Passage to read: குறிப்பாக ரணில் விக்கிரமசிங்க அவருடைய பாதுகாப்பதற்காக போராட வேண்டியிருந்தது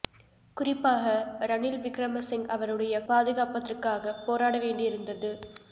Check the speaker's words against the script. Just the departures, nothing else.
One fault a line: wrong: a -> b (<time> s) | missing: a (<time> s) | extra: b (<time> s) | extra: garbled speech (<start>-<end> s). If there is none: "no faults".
no faults